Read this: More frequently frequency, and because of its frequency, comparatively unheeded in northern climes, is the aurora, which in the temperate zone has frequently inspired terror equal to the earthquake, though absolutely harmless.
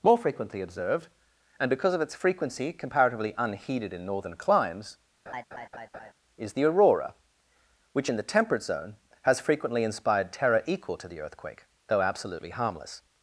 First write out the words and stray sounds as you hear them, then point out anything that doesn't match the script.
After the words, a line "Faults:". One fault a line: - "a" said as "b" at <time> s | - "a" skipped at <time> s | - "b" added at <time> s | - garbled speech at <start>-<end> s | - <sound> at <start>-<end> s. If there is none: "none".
More frequently observed, and because of its frequency, comparatively unheeded in northern climes, is the aurora, which in the temperate zone has frequently inspired terror equal to the earthquake, though absolutely harmless.
Faults:
- "frequency" said as "observed" at 0.6 s
- laugh at 5.3-6.1 s